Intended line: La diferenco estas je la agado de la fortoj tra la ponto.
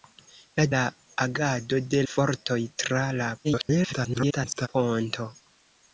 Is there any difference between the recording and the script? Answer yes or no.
yes